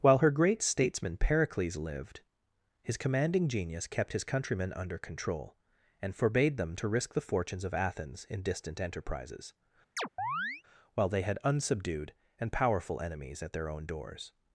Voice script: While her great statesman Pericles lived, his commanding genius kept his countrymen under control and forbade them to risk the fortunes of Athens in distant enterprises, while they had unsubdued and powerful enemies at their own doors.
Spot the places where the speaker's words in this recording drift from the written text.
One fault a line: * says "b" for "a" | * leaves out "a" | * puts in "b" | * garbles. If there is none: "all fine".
all fine